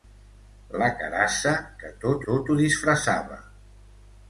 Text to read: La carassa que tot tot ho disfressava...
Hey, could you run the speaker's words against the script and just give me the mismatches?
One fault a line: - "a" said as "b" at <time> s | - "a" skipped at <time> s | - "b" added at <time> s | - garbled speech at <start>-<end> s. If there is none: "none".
none